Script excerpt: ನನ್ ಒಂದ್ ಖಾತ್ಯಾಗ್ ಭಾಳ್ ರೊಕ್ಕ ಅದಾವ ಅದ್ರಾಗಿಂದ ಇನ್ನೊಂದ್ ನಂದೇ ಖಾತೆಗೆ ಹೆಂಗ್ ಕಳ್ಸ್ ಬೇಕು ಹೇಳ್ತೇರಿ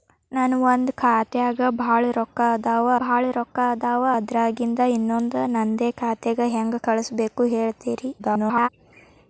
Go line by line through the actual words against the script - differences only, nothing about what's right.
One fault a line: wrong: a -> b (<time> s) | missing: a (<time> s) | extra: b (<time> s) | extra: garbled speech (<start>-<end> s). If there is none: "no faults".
extra: ಭಾಳ್ ರೊಕ್ಕ ಅದಾವ (3.0 s)
extra: garbled speech (8.2-8.7 s)